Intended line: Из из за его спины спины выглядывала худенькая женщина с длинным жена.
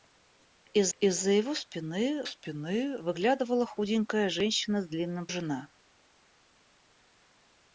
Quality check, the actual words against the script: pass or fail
pass